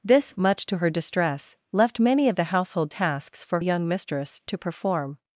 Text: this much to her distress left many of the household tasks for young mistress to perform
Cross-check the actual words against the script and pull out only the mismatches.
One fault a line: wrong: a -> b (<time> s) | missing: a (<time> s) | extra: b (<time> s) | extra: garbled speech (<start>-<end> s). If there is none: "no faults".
no faults